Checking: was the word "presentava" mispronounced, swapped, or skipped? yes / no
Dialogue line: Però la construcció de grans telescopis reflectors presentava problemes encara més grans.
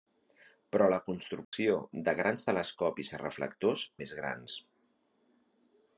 yes